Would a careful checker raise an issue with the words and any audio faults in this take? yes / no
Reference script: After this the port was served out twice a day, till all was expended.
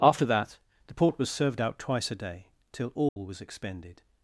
yes